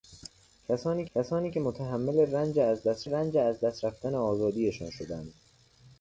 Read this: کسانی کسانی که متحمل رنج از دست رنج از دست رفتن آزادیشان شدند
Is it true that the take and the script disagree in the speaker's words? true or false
false